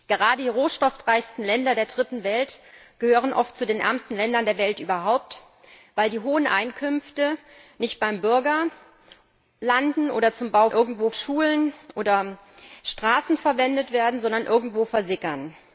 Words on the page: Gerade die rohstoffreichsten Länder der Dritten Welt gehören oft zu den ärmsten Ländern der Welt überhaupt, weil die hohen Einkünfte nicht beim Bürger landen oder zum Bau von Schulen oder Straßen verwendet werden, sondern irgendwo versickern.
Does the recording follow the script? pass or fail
fail